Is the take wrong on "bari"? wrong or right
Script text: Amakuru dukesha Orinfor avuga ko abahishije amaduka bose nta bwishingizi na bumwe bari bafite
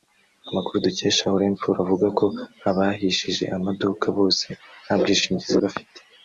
wrong